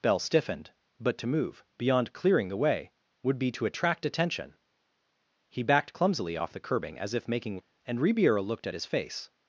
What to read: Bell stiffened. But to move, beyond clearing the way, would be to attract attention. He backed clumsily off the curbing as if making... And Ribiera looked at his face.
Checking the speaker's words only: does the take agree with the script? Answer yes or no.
yes